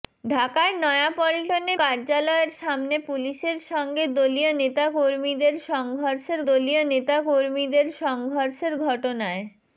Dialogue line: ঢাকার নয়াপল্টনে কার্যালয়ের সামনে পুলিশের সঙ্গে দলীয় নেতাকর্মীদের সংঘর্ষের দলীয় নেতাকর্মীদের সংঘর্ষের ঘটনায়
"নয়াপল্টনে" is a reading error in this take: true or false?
false